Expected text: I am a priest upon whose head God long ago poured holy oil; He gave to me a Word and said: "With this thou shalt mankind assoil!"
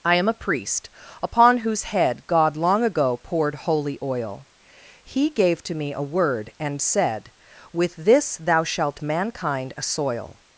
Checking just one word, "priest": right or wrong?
right